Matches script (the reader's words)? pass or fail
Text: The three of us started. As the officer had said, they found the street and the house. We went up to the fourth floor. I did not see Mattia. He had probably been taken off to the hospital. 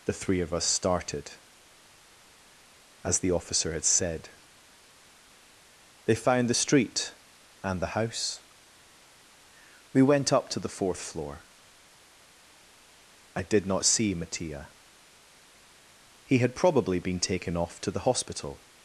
pass